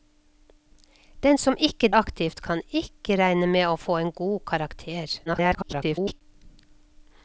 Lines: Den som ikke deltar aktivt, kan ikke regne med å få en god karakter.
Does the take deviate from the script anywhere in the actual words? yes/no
yes